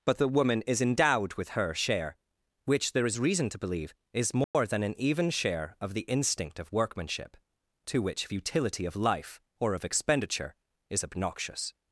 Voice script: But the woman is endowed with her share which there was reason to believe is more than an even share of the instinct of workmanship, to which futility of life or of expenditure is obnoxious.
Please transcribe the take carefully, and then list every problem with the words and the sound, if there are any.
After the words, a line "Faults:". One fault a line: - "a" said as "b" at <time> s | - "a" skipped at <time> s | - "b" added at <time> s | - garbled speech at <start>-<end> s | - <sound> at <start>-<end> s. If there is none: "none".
But the woman is endowed with her share which there is reason to believe is more than an even share of the instinct of workmanship, to which futility of life or of expenditure is obnoxious.
Faults:
- "was" said as "is" at 3.1 s
- dropout at 4.4-4.5 s